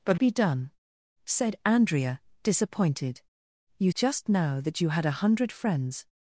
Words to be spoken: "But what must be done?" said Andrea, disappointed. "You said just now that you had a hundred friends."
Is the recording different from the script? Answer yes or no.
yes